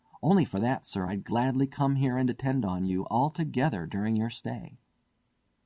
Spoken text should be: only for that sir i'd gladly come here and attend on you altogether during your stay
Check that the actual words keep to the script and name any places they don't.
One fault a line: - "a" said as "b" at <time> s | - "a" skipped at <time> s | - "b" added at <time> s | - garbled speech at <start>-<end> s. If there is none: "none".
none